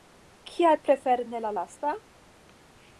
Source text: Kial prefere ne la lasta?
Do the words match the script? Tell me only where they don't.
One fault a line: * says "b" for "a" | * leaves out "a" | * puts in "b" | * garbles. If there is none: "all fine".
all fine